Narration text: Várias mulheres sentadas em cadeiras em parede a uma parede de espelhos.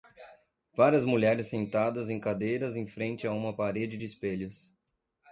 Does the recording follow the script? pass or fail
fail